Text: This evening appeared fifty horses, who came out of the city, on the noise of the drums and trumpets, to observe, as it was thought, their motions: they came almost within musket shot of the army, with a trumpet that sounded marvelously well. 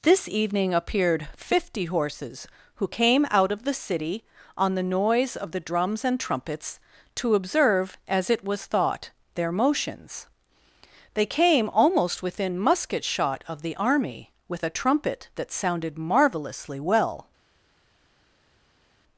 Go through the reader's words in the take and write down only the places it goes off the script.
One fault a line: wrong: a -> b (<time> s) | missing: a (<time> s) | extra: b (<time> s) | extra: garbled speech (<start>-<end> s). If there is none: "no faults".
no faults